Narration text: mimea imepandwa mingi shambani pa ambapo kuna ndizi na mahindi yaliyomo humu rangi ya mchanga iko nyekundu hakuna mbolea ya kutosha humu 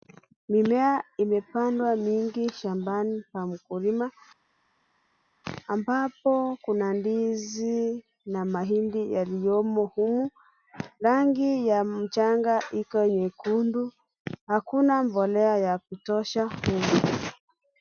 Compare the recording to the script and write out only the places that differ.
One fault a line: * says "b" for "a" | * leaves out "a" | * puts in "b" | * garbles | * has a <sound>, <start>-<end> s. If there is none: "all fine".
* puts in "mkulima"